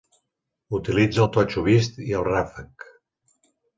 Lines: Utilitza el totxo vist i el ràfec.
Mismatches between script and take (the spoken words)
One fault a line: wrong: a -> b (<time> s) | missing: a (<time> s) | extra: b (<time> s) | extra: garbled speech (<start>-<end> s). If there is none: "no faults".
no faults